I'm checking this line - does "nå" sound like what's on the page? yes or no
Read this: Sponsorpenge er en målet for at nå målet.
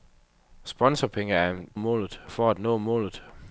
yes